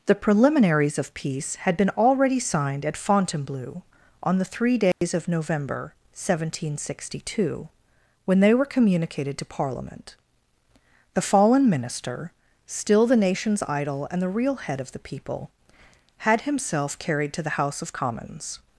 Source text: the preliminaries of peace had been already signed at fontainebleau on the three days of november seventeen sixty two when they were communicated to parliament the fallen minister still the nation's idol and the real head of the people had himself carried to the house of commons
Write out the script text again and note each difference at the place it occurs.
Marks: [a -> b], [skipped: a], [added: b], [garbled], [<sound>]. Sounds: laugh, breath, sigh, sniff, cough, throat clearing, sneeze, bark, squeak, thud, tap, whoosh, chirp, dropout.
the preliminaries of peace had been already signed at fontainebleau on the three days [dropout] of november seventeen sixty two when they were communicated to parliament the fallen minister still the nation's idol and the real head of the people had himself carried to the house of commons